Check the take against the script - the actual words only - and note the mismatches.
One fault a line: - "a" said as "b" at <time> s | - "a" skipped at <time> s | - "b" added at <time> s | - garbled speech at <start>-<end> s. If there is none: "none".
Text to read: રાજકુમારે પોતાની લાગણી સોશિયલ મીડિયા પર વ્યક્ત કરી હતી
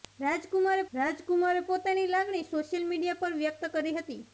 - "રાજકુમારે" added at 0.9 s